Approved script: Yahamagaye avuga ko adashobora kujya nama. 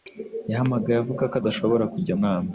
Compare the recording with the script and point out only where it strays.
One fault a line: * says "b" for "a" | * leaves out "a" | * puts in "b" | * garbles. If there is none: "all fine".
all fine